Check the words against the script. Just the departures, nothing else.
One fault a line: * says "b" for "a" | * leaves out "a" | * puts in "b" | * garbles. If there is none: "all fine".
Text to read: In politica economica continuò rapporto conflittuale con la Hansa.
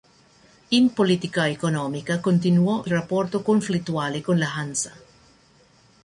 all fine